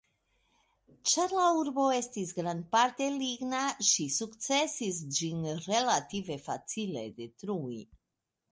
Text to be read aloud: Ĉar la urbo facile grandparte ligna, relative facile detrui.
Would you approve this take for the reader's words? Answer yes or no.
no